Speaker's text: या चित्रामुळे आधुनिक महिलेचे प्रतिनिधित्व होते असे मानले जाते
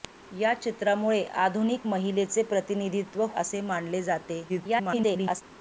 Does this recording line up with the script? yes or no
no